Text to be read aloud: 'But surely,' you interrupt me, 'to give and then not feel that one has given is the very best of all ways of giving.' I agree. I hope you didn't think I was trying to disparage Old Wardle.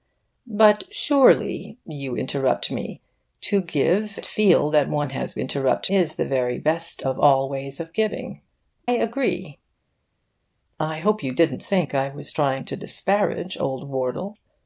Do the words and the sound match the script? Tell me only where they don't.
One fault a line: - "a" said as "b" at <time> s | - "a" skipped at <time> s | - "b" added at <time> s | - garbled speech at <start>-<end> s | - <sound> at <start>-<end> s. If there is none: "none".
- "and then not" skipped at 4.2 s
- "given" said as "interrupt" at 5.4 s
- "I" skipped at 8.4 s